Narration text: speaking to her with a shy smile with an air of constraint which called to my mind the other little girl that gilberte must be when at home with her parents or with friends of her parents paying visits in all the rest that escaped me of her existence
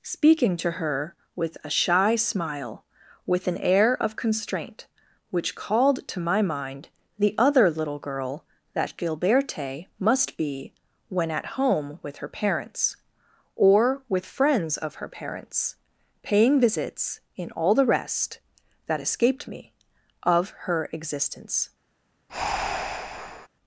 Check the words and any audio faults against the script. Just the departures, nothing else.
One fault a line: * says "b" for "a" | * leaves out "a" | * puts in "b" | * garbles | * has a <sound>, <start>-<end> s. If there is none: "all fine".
* has a breath, 22.3-23.5 s